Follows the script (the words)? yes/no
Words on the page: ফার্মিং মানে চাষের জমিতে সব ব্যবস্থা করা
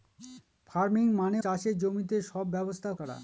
yes